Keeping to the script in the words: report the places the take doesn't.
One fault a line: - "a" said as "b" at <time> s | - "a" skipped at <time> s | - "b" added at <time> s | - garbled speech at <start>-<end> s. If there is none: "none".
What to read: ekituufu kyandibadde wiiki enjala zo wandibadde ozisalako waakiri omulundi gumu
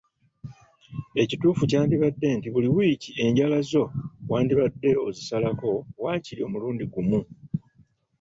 - "nti buli" added at 2.4 s